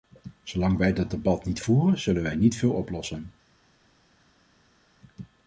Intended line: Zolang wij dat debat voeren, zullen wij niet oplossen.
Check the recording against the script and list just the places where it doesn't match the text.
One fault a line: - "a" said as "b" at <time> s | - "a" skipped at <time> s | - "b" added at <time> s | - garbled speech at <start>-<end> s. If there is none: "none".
- "niet" added at 1.4 s
- "veel" added at 2.6 s